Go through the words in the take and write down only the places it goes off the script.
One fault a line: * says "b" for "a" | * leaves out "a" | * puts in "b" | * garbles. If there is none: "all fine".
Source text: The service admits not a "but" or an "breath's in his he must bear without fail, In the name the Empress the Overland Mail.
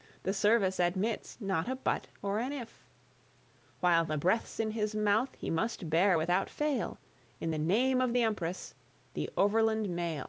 * puts in "if While the"
* puts in "mouth"
* puts in "of"